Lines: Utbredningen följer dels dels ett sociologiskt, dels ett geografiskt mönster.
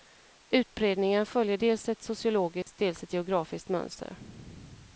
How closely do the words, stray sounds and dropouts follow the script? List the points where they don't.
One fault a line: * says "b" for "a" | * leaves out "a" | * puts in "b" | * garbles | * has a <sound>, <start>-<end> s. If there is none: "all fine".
* leaves out "dels"
* has a dropout, 2.6-2.7 s